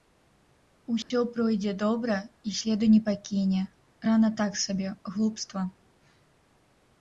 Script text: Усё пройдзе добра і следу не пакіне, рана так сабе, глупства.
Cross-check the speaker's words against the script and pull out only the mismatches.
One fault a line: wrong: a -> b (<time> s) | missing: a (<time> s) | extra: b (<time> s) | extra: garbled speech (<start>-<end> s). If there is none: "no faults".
no faults